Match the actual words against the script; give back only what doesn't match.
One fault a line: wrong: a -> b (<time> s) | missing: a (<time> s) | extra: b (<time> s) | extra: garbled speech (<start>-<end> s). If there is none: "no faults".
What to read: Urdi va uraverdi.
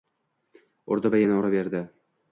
extra: yana (1.2 s)